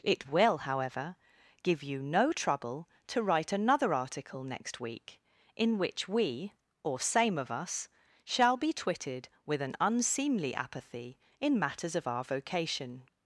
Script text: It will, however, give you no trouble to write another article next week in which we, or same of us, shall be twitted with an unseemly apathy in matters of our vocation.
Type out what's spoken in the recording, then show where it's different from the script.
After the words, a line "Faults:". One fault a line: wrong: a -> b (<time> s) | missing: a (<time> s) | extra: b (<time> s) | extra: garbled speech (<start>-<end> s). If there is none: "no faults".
It will, however, give you no trouble to write another article next week in which we, or same of us, shall be twitted with an unseemly apathy in matters of our vocation.
Faults:
no faults